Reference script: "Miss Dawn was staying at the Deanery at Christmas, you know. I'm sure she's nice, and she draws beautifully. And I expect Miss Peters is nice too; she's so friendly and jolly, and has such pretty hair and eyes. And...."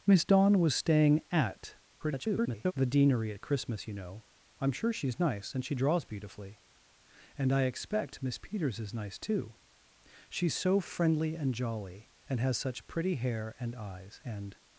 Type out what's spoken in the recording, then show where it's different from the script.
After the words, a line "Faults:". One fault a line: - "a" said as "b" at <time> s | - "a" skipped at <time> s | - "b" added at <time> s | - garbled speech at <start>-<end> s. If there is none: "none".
"Miss Dawn was staying at [garbled] the Deanery at Christmas, you know. I'm sure she's nice, and she draws beautifully. And I expect Miss Peters is nice too; she's so friendly and jolly, and has such pretty hair and eyes. And...."
Faults:
- garbled speech at 2.0-2.7 s